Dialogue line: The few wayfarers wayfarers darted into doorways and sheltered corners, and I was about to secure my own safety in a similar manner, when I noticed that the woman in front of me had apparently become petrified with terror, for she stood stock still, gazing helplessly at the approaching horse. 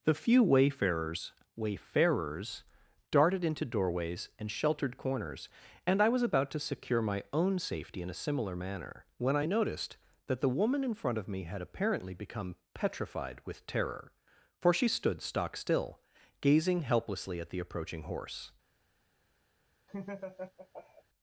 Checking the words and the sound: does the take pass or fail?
fail